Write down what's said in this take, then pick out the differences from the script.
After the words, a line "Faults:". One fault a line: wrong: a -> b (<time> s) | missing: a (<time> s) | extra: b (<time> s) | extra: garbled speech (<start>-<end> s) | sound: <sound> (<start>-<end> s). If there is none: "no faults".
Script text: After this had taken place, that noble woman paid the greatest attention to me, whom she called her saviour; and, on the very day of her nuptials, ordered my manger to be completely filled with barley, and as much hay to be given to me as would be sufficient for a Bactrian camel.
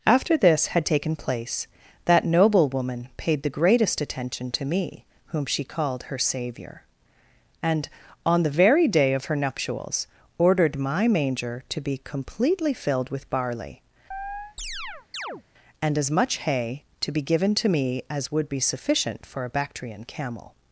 After this had taken place, that noble woman paid the greatest attention to me, whom she called her saviour; and, on the very day of her nuptials, ordered my manger to be completely filled with barley, and as much hay to be given to me as would be sufficient for a Bactrian camel.
Faults:
sound: chirp (14.1-15.4 s)